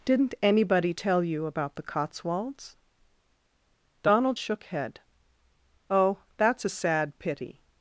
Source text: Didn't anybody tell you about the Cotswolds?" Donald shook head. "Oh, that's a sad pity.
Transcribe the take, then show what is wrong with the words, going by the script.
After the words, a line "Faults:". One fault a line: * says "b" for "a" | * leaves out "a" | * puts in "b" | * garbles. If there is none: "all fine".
Didn't anybody tell you about the Cotswolds?" Donald shook head. "Oh, that's a sad pity.
Faults:
all fine